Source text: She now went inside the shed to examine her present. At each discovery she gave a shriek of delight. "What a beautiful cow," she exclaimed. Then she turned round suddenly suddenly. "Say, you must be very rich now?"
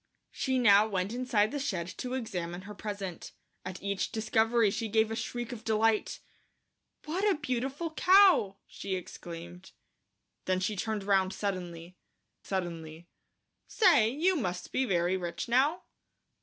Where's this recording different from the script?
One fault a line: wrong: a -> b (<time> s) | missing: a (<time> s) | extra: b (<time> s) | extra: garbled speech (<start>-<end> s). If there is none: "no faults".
no faults